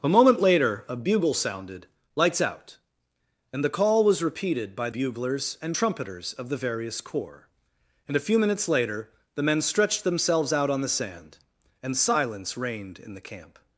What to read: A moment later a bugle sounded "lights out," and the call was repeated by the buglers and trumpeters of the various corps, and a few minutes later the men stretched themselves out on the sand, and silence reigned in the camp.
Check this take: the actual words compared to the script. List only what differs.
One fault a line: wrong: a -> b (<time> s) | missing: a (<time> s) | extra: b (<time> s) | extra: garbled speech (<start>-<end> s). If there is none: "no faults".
missing: the (4.9 s)